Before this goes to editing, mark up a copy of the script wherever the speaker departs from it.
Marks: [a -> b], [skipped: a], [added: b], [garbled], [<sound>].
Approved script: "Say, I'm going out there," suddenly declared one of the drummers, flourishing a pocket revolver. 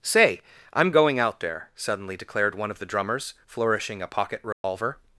"Say, I'm going out there," suddenly declared one of the drummers, flourishing a pocket revolver. [dropout]